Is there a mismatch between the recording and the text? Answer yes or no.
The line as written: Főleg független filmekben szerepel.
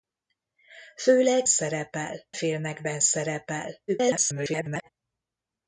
yes